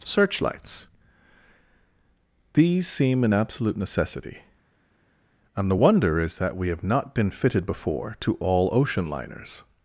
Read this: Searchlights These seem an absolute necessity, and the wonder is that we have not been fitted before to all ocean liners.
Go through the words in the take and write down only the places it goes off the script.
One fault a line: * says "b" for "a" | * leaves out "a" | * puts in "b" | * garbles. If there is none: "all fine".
all fine